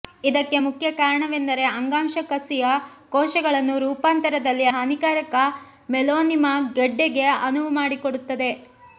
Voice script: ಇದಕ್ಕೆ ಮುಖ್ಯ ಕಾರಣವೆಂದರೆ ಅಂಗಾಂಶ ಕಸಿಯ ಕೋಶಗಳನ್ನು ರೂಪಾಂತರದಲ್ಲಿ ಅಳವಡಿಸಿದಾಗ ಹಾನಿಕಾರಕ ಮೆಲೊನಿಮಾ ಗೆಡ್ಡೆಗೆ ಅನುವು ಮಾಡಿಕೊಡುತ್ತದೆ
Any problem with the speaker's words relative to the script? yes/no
yes